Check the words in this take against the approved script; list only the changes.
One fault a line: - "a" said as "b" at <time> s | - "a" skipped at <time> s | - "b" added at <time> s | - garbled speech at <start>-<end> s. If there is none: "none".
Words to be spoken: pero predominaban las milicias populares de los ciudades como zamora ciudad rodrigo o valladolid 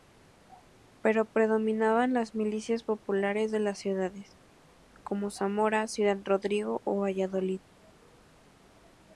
- "los" said as "las" at 3.6 s